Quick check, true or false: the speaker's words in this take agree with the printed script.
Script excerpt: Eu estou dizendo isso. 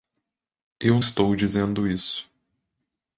true